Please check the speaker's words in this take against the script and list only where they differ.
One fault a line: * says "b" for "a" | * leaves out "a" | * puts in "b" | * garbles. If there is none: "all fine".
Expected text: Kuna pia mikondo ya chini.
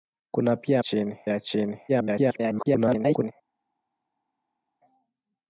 * says "chini" for "mikondo"
* garbles